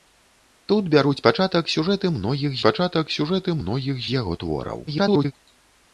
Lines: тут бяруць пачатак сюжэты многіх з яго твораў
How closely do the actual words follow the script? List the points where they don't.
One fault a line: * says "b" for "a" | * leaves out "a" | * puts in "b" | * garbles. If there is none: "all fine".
* puts in "пачатак сюжэты многіх"
* garbles